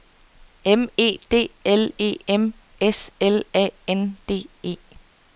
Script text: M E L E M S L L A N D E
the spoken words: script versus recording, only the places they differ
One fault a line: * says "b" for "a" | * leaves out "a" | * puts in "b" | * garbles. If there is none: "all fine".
* puts in "D"
* leaves out "L"